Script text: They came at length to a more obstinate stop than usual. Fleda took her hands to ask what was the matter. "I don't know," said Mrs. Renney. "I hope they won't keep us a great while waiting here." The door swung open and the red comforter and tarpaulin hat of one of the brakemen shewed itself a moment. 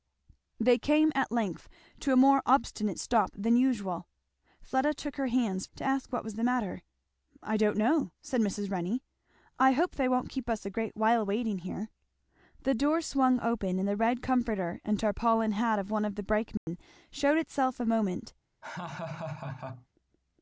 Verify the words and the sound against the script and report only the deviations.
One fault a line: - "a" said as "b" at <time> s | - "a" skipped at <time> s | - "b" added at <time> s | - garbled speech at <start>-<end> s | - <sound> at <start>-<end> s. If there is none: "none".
- dropout at 16.6-16.7 s
- laugh at 18.6-19.9 s